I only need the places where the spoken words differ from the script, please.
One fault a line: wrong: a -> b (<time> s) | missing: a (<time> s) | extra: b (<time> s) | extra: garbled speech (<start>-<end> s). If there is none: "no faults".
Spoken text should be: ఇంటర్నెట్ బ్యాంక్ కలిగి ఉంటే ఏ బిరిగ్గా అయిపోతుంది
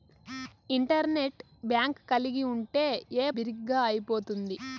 no faults